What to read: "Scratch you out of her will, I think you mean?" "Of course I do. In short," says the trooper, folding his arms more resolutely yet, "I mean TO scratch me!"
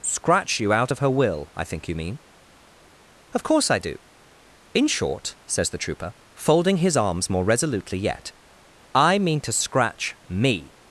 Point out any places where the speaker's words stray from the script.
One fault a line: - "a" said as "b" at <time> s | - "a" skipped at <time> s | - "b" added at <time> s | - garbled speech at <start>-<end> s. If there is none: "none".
none